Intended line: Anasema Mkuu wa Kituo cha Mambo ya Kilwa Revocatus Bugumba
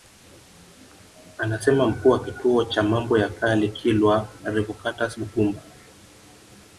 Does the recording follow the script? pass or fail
fail